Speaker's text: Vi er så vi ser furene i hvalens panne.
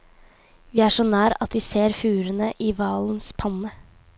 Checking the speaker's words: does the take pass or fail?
fail